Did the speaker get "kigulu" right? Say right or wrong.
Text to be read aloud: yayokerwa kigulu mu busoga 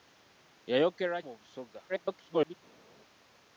wrong